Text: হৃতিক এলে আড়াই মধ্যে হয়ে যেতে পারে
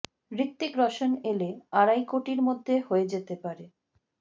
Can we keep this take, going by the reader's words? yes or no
no